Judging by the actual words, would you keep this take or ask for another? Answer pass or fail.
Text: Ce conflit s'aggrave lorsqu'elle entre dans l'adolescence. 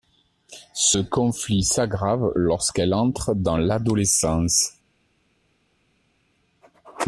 pass